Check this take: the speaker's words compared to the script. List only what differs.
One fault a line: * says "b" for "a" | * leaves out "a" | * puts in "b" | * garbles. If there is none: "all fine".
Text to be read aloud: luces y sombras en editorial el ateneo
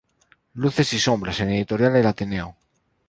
all fine